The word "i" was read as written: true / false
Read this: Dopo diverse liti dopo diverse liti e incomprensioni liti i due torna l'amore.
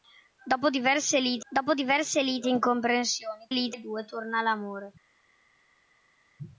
true